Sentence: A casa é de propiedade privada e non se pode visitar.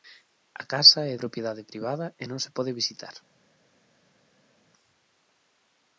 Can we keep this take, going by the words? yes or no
no